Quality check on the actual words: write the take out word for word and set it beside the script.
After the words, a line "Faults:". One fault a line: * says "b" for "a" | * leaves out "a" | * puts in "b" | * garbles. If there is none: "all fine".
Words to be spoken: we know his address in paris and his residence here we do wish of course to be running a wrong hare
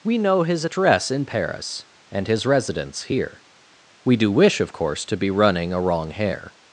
we know his address in paris and his residence here we do wish of course to be running a wrong hare
Faults:
all fine